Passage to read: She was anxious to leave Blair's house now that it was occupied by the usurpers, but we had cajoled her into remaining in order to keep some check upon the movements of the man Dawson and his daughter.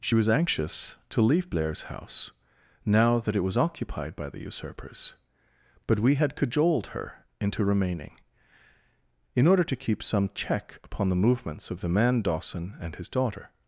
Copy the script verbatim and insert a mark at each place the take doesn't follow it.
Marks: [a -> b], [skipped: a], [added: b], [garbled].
She was anxious to leave Blair's house now that it was occupied by the usurpers, but we had cajoled her into remaining in order to keep some check upon the movements of the man Dawson and his daughter.